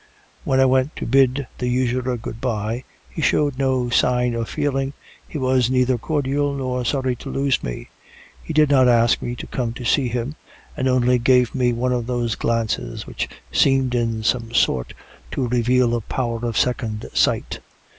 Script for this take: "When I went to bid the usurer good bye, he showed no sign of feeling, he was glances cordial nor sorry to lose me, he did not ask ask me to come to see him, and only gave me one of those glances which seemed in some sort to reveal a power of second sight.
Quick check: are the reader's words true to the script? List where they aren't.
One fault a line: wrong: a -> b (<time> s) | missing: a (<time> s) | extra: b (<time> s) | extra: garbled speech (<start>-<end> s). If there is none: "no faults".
wrong: glances -> neither (5.7 s)
missing: ask (9.2 s)